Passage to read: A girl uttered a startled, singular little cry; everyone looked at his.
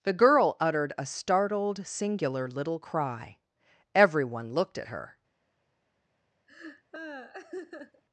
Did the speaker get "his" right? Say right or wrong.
wrong